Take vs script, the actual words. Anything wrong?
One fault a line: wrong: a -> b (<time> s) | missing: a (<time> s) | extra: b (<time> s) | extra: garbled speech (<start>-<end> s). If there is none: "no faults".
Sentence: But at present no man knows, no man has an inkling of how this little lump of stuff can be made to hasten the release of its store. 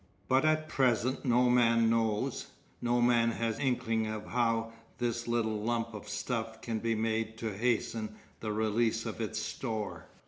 missing: an (3.6 s)